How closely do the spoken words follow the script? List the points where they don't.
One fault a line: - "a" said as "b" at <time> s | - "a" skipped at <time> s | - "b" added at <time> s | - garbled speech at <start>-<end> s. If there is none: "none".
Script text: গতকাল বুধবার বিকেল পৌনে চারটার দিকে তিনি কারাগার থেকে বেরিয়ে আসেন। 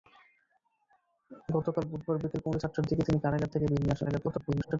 - garbled speech at 4.0-4.8 s